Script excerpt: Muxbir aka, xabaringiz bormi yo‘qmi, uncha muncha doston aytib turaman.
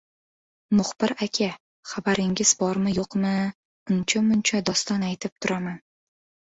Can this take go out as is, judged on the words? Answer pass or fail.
pass